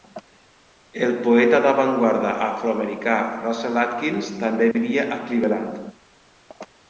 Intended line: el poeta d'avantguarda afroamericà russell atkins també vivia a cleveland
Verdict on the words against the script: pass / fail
pass